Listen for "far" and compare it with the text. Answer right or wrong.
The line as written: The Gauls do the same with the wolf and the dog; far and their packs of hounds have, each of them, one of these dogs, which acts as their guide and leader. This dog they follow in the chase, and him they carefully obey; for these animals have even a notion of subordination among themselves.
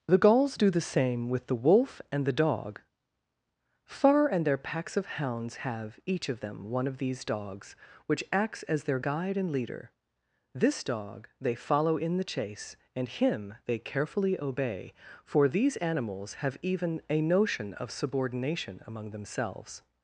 right